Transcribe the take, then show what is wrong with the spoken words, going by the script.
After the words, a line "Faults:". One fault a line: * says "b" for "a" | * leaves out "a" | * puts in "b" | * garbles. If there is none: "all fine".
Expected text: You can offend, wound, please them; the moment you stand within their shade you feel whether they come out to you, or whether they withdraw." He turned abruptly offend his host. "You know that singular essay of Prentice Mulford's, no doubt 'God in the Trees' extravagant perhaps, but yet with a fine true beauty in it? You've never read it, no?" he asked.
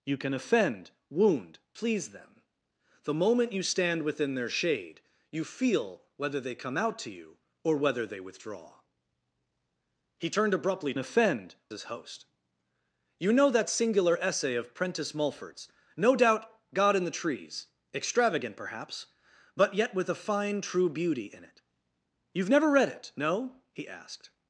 You can offend, wound, please them; the moment you stand within their shade you feel whether they come out to you, or whether they withdraw." He turned abruptly offend his host. "You know that singular essay of Prentice Mulford's, no doubt 'God in the Trees' extravagant perhaps, but yet with a fine true beauty in it? You've never read it, no?" he asked.
Faults:
all fine